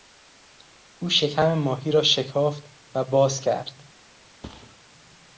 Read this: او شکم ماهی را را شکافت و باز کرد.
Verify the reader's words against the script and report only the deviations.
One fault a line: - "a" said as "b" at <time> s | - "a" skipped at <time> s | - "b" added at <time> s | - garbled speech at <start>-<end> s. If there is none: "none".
- "را" skipped at 2.0 s